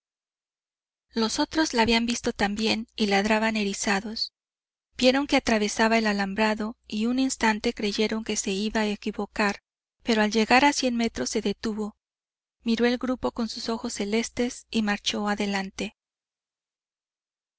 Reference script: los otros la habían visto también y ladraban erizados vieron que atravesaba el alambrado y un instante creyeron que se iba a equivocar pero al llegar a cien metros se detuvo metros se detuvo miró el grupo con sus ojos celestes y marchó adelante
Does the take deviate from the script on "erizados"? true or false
false